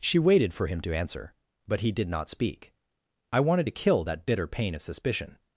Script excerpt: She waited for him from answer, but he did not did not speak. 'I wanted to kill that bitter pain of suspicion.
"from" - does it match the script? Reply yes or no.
no